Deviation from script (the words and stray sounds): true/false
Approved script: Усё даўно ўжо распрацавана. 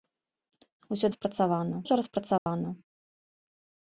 true